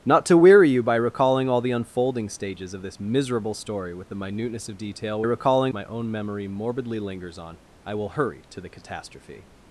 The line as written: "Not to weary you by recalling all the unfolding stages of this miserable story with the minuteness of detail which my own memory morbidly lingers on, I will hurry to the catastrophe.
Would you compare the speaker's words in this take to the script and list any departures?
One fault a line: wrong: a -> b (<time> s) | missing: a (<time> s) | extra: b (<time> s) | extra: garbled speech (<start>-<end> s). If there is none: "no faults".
wrong: which -> recalling (5.2 s)